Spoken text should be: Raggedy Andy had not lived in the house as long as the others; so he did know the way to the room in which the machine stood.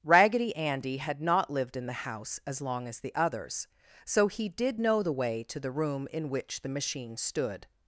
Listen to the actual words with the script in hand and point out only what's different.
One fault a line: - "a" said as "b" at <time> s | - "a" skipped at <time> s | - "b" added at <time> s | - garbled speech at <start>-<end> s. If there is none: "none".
none